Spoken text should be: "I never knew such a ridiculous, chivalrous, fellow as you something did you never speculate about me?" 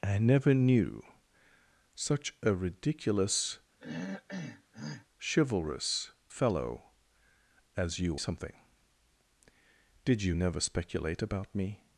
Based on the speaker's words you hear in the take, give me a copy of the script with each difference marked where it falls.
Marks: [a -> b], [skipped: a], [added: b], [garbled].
"I never knew such a ridiculous, chivalrous, fellow as you something did you never speculate about me?"